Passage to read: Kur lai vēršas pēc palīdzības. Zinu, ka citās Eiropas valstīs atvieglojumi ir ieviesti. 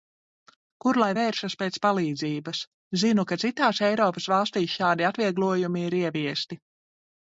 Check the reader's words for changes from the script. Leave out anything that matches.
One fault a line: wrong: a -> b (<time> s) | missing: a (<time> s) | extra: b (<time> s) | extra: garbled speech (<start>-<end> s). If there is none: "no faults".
extra: šādi (4.8 s)